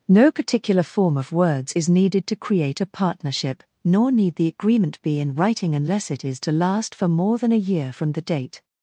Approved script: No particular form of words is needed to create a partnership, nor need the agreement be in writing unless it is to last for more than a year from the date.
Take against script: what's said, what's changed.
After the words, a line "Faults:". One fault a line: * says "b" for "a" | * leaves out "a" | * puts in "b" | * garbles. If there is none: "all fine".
No particular form of words is needed to create a partnership, nor need the agreement be in writing unless it is to last for more than a year from the date.
Faults:
all fine